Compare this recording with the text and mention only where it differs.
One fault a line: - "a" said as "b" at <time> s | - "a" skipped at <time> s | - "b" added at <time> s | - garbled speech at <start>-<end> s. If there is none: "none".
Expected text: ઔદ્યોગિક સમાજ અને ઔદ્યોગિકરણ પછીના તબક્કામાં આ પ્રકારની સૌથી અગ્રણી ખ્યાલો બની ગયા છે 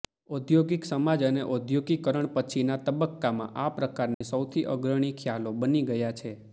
none